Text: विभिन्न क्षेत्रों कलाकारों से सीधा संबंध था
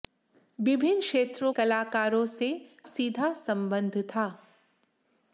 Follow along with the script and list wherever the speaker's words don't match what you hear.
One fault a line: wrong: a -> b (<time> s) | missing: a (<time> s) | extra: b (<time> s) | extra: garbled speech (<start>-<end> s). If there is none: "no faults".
no faults